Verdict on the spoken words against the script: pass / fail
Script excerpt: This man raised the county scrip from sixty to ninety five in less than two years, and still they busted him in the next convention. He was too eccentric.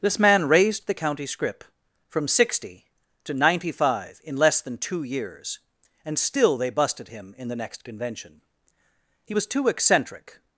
pass